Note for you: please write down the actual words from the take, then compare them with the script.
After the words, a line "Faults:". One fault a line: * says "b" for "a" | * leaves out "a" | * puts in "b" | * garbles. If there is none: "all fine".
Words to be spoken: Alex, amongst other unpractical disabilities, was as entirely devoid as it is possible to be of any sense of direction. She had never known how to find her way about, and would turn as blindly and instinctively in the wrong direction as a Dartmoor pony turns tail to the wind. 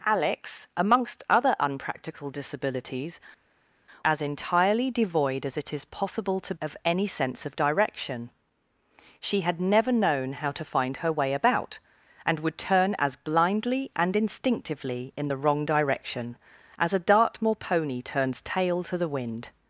Alex, amongst other unpractical disabilities, as entirely devoid as it is possible to of any sense of direction. She had never known how to find her way about, and would turn as blindly and instinctively in the wrong direction as a Dartmoor pony turns tail to the wind.
Faults:
* leaves out "was"
* leaves out "be"